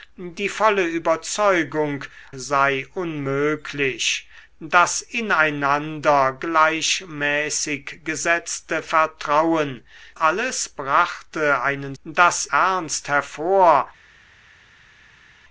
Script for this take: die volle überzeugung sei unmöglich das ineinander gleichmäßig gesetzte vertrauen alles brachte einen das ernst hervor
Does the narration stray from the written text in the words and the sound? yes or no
no